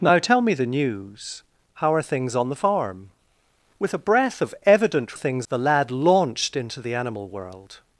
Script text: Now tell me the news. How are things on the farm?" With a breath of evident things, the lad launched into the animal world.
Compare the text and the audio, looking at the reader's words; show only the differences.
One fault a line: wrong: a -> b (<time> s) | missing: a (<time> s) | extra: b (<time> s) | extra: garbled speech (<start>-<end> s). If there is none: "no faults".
no faults